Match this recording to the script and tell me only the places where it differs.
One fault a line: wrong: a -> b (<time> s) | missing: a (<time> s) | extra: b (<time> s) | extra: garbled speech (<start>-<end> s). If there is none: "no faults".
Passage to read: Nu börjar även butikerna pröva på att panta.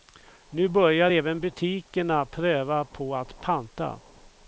no faults